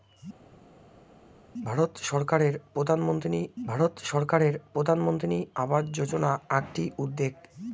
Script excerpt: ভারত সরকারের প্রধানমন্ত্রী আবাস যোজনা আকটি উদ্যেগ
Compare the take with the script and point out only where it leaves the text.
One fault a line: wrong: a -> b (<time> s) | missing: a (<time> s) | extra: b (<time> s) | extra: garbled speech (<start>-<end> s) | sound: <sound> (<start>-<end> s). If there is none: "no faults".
extra: ভারত সরকারের প্রধানমন্ত্রী (3.7 s)